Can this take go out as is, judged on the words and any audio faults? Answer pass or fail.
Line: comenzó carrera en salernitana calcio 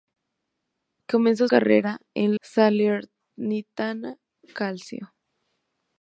pass